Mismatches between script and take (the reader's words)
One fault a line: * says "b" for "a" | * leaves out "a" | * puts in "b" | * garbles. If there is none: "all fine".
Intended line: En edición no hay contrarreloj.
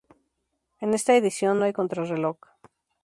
* puts in "esta"